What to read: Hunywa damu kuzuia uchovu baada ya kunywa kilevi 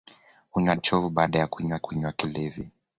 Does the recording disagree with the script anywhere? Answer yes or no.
yes